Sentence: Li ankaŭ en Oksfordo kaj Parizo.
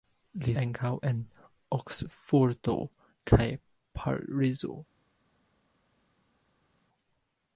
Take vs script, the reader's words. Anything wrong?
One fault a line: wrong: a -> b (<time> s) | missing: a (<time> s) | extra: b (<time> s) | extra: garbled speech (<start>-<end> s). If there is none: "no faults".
no faults